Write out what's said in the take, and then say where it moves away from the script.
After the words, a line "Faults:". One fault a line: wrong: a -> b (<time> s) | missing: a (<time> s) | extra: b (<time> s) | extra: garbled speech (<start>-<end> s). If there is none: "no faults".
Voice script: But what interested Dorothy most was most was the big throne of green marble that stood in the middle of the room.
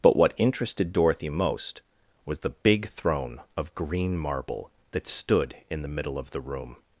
But what interested Dorothy most was the big throne of green marble that stood in the middle of the room.
Faults:
missing: most was (2.4 s)